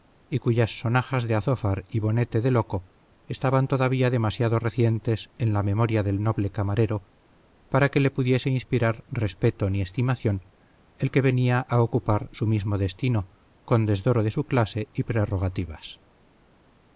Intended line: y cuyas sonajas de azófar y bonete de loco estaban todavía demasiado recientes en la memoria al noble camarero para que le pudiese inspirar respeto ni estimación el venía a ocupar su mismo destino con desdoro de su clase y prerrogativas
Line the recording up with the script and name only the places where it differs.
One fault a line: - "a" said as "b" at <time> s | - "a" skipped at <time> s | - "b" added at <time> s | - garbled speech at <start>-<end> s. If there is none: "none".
- "al" said as "del" at 6.0 s
- "que" added at 11.1 s